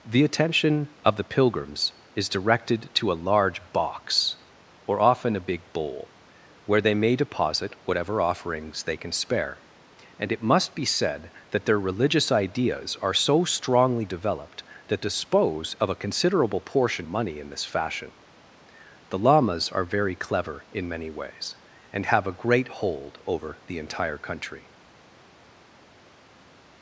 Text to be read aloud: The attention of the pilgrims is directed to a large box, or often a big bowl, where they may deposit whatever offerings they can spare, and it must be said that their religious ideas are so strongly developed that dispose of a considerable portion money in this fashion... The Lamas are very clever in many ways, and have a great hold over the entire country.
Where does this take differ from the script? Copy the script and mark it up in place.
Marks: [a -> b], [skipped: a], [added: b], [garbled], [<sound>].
The attention of the pilgrims is directed to a large box, or often a big bowl, where they may deposit whatever offerings they can spare, and it must be said that their religious ideas are so strongly developed that dispose of a considerable portion money in this fashion... The Lamas are very clever in many ways, and have a great hold over the entire country.